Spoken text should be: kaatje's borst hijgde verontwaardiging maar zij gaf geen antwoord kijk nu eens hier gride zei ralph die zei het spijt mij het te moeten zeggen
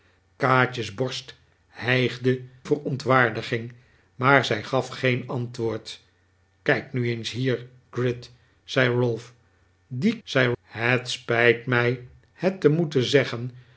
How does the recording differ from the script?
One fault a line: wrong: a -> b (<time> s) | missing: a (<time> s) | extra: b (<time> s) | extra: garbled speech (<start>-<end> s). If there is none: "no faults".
no faults